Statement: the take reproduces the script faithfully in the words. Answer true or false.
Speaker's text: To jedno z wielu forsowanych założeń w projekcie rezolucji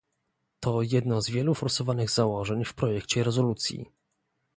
true